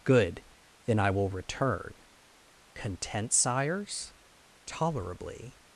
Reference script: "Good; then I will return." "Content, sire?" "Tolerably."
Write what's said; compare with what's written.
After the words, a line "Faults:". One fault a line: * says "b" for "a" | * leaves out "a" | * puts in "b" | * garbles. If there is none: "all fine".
"Good; then I will return." "Content, sires?" "Tolerably."
Faults:
* says "sires" for "sire"